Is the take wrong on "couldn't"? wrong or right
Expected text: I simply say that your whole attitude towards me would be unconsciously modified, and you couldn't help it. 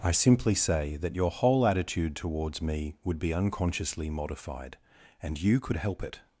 wrong